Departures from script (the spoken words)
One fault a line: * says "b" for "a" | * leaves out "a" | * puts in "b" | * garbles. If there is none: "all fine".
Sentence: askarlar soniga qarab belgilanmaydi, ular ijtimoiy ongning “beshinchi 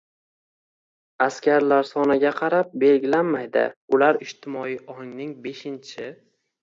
all fine